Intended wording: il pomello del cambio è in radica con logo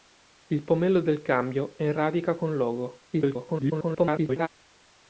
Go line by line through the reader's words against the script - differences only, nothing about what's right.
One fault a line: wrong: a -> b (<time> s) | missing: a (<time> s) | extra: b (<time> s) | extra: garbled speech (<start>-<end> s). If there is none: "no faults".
extra: garbled speech (3.1-4.5 s)